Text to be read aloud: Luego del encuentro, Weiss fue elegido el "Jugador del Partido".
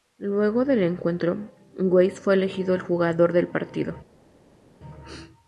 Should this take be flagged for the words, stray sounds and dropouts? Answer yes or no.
no